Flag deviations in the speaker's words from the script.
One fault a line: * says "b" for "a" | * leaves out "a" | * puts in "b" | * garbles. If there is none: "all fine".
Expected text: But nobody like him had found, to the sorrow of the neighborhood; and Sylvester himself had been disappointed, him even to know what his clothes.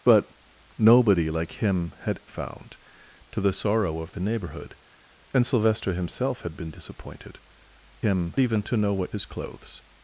all fine